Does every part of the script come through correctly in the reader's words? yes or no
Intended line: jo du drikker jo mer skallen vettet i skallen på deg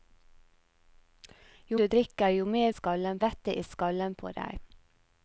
yes